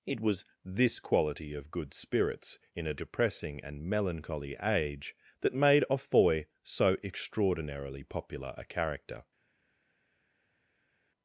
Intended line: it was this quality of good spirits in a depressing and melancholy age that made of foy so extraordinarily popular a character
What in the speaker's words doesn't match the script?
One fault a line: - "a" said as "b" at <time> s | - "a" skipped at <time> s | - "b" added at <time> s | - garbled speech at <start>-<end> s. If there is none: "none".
none